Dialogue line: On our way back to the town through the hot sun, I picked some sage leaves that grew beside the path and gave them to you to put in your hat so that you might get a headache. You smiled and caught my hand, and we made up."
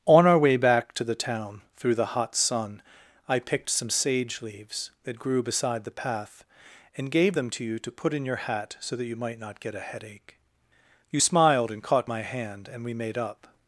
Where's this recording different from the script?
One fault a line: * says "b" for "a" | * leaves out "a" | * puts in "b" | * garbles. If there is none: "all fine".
* puts in "not"